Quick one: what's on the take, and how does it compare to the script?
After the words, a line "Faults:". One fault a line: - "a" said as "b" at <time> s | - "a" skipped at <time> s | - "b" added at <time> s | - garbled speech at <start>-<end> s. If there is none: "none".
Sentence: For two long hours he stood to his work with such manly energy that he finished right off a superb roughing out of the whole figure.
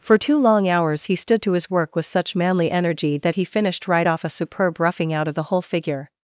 For two long hours he stood to his work with such manly energy that he finished right off a superb roughing out of the whole figure.
Faults:
none